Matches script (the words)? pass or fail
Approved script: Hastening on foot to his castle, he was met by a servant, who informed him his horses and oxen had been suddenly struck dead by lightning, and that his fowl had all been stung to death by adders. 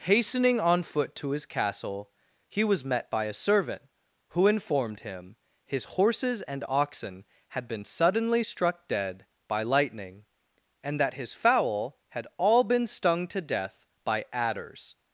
pass